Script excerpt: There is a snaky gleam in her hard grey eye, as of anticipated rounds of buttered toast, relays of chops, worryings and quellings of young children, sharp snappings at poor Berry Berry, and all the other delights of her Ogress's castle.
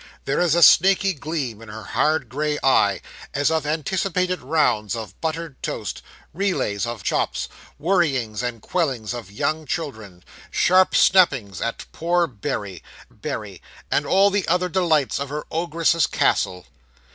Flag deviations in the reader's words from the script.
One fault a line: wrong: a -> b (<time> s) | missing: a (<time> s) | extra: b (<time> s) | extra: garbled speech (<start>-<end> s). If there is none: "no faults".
no faults